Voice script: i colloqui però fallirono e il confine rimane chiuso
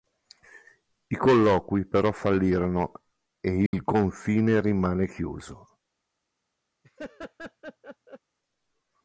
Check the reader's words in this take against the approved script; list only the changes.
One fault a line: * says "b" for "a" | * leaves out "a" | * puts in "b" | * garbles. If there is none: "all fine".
all fine